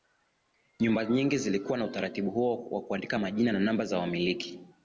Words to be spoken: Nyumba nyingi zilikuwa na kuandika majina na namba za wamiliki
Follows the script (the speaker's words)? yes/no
no